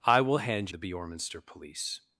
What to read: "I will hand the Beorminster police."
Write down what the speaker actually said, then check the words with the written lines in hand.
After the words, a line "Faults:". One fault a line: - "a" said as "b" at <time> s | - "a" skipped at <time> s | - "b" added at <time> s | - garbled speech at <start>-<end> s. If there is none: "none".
"I will hand the Beorminster police."
Faults:
none